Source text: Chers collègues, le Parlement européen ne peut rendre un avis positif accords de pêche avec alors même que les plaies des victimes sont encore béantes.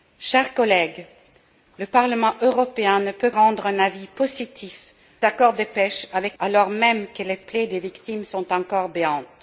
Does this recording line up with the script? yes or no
yes